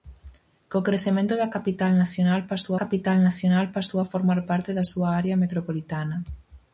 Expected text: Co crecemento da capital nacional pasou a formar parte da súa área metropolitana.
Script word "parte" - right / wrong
right